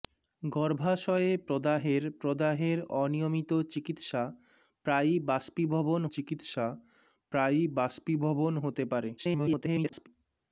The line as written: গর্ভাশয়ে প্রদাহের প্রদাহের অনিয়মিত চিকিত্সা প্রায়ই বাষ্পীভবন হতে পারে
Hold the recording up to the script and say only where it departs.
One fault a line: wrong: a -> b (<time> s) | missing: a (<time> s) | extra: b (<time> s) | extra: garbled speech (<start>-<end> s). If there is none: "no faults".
extra: চিকিত্সা প্রায়ই বাষ্পীভবন (6.1 s)
extra: garbled speech (9.2-10.1 s)